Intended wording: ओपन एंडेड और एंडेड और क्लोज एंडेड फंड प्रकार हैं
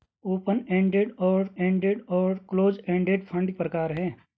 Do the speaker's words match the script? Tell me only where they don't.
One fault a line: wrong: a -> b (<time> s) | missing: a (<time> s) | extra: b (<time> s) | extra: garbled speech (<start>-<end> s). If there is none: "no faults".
no faults